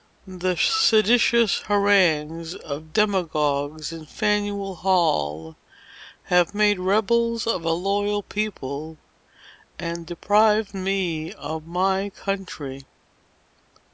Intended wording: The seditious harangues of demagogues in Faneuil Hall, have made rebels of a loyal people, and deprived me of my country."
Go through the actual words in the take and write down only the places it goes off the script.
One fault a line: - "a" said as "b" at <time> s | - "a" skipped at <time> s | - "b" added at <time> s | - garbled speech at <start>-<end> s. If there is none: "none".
none